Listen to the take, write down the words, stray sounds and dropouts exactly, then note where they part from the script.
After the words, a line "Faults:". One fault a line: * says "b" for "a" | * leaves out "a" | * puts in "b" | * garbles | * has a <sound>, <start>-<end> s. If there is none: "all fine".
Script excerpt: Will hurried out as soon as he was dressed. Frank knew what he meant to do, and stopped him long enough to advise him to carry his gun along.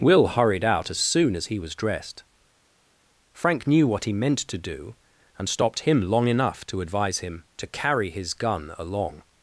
Will hurried out as soon as he was dressed. Frank knew what he meant to do, and stopped him long enough to advise him to carry his gun along.
Faults:
all fine